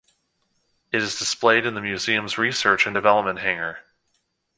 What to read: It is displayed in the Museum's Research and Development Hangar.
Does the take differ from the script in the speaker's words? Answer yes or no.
no